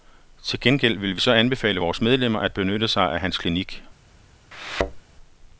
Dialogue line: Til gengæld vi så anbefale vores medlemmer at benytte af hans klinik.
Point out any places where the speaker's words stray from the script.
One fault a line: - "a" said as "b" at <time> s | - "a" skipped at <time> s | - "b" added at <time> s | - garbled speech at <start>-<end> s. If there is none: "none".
- "vil" added at 1.0 s
- "sig" added at 2.9 s